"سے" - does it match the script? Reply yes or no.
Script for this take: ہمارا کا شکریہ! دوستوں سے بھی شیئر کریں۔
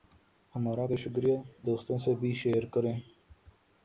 yes